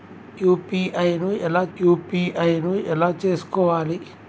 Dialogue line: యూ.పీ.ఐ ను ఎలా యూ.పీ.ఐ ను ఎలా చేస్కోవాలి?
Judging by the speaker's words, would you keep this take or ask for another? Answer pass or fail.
pass